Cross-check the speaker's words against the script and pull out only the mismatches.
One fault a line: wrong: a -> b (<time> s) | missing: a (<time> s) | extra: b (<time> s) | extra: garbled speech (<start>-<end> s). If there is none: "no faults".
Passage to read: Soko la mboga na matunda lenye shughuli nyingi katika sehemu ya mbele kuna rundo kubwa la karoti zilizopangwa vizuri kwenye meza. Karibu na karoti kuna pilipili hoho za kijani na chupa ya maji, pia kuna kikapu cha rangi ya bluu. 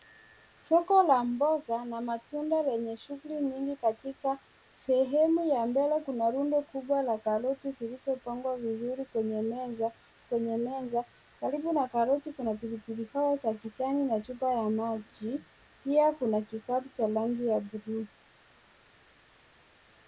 extra: kwenye meza (10.2 s)